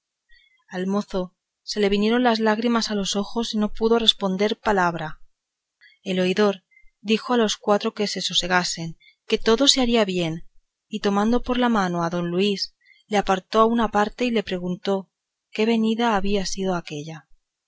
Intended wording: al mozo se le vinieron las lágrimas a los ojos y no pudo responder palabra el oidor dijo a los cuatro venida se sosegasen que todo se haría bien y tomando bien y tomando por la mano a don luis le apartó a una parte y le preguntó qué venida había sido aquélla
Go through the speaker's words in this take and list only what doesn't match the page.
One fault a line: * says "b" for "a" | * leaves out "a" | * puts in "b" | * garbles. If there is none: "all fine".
* says "que" for "venida"
* leaves out "bien y tomando"